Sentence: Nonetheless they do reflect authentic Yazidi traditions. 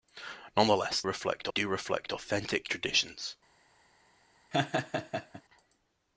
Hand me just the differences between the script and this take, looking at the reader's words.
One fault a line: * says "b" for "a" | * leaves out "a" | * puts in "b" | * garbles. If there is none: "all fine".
* says "reflect" for "they"
* leaves out "Yazidi"